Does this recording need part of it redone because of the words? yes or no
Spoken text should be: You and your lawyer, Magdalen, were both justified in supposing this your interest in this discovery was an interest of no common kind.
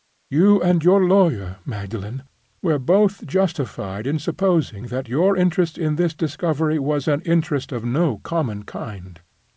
yes